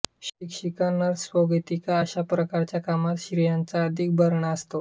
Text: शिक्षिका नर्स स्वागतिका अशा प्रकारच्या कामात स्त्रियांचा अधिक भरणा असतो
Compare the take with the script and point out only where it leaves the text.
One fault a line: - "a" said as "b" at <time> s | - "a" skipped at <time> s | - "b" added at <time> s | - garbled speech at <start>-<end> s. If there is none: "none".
none